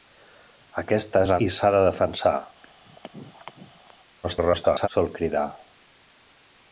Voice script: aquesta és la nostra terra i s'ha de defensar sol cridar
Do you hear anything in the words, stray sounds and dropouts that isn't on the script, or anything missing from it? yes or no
yes